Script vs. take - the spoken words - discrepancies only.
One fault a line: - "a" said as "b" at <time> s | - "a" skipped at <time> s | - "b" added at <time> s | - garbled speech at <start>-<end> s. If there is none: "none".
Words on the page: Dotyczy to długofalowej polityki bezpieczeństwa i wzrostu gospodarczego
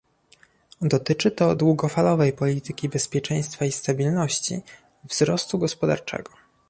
- "stabilności" added at 3.7 s